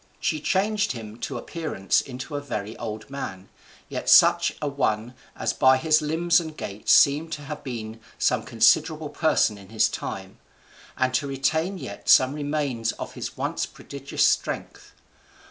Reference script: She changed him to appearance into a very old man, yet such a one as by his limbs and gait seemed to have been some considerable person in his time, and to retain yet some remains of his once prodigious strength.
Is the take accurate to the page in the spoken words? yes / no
yes